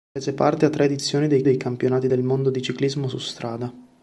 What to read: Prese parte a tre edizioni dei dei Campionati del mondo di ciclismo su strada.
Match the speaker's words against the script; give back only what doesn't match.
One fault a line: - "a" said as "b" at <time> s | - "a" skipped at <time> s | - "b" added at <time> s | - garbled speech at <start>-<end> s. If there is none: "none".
none